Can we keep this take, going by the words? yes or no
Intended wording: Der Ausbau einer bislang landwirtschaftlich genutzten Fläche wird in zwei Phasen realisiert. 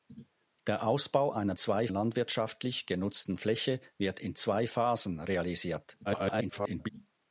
no